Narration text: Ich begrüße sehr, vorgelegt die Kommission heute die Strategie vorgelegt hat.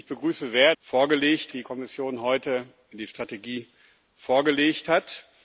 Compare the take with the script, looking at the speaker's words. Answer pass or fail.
pass